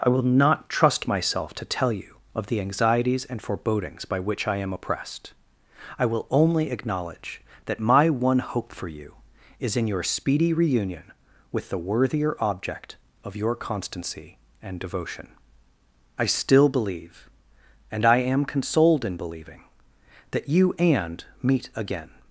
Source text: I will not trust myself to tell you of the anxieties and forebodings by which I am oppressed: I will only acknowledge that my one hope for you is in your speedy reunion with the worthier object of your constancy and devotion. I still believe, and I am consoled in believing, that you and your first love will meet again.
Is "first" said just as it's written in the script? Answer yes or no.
no